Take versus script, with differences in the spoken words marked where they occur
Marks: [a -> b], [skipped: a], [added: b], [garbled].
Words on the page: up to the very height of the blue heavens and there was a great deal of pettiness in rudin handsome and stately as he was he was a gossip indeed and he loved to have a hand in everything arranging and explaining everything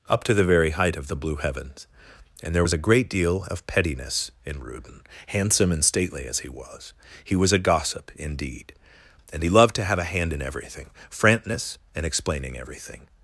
up to the very height of the blue heavens and there was a great deal of pettiness in rudin handsome and stately as he was he was a gossip indeed and he loved to have a hand in everything [arranging -> frantness] and explaining everything